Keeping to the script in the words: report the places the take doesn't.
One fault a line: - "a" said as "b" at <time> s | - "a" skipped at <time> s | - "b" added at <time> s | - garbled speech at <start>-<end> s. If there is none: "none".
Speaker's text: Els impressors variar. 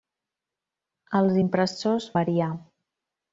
none